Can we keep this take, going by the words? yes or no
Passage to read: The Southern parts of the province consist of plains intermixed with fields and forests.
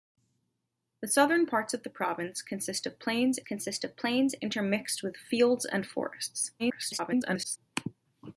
no